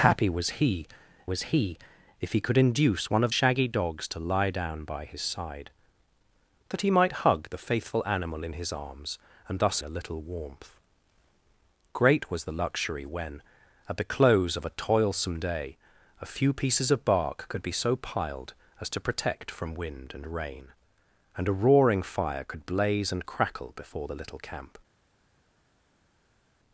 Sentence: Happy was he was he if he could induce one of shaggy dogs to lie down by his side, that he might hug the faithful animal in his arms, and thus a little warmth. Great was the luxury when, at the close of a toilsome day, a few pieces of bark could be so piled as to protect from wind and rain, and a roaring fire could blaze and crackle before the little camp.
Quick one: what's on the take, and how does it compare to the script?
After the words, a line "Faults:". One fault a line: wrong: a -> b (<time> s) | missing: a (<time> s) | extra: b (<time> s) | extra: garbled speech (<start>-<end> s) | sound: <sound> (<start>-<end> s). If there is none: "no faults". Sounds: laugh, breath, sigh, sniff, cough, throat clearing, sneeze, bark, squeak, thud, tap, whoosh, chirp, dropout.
Happy was he was he if he could induce one of shaggy dogs to lie down by his side, that he might hug the faithful animal in his arms, and thus a little warmth. Great was the luxury when, at the close of a toilsome day, a few pieces of bark could be so piled as to protect from wind and rain, and a roaring fire could blaze and crackle before the little camp.
Faults:
no faults